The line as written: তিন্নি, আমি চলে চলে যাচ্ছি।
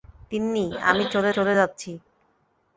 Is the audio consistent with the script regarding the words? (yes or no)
yes